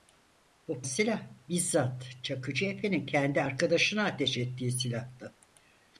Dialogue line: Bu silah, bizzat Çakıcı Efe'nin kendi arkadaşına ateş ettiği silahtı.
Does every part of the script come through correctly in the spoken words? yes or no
yes